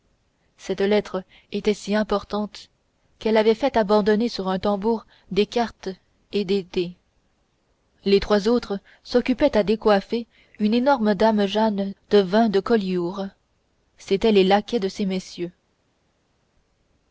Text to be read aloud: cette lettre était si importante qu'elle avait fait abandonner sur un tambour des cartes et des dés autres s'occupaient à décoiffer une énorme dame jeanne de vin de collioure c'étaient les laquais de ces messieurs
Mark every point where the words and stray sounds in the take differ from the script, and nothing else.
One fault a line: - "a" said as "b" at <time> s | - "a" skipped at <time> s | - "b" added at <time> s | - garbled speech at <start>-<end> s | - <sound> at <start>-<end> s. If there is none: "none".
- "les trois" added at 8.0 s